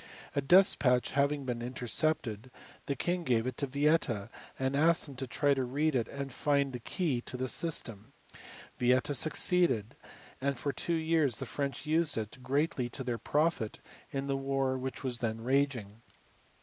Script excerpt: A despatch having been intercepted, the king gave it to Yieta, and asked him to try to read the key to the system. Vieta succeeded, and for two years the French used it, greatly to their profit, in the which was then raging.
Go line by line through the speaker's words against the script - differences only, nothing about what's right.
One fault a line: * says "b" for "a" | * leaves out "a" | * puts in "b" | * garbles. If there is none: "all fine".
* puts in "it and find"
* puts in "war"